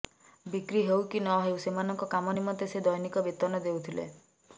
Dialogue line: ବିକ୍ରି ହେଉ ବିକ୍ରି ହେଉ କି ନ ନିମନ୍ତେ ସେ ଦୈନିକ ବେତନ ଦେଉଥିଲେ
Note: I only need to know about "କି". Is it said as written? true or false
false